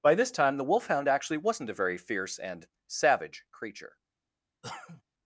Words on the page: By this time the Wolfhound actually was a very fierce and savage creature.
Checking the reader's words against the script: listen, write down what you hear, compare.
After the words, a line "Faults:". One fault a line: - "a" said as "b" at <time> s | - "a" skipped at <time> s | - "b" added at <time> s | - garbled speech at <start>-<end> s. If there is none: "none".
By this time the Wolfhound actually wasn't a very fierce and savage creature.
Faults:
- "was" said as "wasn't" at 1.4 s